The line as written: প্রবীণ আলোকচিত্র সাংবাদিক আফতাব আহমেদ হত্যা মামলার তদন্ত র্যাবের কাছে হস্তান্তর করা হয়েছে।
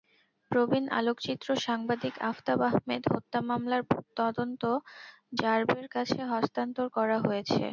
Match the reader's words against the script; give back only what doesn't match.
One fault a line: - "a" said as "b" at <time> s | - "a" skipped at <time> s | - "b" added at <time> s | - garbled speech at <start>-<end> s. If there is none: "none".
none